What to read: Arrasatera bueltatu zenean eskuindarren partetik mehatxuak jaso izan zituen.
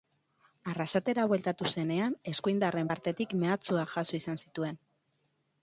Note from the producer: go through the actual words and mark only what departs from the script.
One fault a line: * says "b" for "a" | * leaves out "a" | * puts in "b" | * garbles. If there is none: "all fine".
all fine